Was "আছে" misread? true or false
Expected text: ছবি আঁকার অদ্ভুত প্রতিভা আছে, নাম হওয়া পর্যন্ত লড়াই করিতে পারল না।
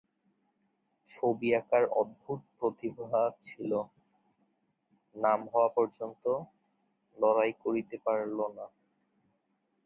true